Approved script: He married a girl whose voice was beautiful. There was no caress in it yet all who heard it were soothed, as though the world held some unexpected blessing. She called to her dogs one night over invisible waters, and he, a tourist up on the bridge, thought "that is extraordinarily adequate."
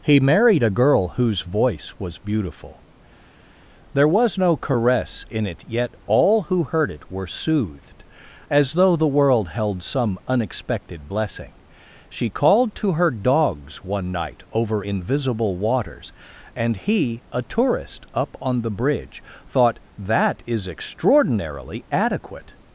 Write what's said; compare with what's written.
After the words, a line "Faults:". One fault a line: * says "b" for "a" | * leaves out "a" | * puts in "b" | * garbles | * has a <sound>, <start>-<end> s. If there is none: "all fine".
He married a girl whose voice was beautiful. There was no caress in it yet all who heard it were soothed, as though the world held some unexpected blessing. She called to her dogs one night over invisible waters, and he, a tourist up on the bridge, thought "that is extraordinarily adequate."
Faults:
all fine